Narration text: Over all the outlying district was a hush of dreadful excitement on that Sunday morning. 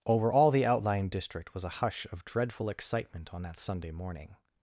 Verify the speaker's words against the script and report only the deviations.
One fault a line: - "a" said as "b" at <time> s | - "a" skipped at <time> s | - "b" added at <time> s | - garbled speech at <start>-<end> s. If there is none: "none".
none